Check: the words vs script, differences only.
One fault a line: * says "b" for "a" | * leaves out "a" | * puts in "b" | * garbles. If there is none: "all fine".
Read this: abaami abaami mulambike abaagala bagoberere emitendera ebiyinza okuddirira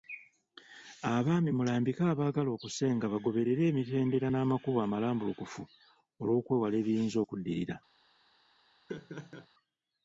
* leaves out "abaami"
* puts in "okusenga"
* puts in "n'amakubo amalambulukufu olwokwewala"